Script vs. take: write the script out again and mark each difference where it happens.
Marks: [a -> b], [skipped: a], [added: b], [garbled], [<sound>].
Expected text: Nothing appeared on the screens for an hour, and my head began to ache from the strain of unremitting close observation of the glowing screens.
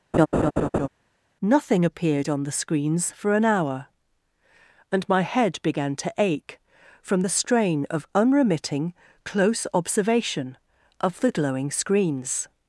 [laugh] Nothing appeared on the screens for an hour, and my head began to ache from the strain of unremitting close observation of the glowing screens.